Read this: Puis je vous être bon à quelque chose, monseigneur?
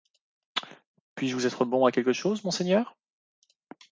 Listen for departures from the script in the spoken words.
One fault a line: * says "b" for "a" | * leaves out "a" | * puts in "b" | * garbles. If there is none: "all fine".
all fine